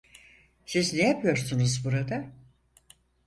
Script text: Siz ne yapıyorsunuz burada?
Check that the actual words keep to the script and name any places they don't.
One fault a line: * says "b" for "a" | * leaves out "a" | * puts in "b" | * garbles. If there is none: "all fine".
all fine